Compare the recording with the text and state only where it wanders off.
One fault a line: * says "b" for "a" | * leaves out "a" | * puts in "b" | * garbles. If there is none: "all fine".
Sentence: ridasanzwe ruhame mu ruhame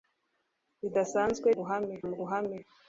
all fine